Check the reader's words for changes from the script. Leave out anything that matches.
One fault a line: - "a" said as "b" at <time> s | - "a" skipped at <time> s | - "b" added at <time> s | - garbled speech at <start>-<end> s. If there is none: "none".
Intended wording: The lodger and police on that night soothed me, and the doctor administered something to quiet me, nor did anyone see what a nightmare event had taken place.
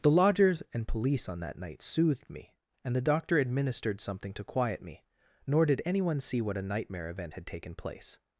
- "lodger" said as "lodgers" at 0.1 s